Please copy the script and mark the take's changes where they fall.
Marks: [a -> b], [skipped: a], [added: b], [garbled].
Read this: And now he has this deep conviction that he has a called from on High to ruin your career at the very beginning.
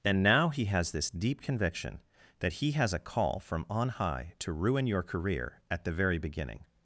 And now he has this deep conviction that he has a [called -> call] from on High to ruin your career at the very beginning.